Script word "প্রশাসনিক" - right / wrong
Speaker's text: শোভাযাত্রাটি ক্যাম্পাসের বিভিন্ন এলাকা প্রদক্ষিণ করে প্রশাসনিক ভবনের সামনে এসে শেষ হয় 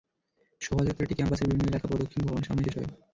wrong